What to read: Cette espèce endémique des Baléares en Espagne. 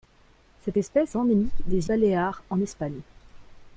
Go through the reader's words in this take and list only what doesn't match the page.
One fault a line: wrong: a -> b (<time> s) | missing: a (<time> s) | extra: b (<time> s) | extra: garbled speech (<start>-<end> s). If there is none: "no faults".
no faults